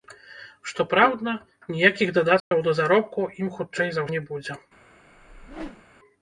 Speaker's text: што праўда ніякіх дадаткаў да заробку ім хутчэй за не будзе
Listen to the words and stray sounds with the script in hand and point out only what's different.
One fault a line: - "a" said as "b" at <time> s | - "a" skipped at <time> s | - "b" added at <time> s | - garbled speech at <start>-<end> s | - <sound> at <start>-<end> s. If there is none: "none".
- dropout at 2.4-2.5 s
- whoosh at 5.1-5.8 s